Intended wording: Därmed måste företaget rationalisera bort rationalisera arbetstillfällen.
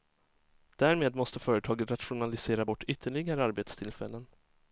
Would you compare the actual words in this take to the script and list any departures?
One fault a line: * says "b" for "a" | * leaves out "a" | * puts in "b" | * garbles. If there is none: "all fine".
* says "ytterligare" for "rationalisera"